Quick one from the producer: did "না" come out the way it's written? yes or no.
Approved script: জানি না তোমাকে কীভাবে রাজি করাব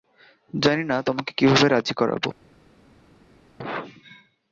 yes